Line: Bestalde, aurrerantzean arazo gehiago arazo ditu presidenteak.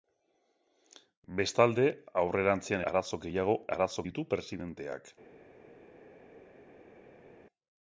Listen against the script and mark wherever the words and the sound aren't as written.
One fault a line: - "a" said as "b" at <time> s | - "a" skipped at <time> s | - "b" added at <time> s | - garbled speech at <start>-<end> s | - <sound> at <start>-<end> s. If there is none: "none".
none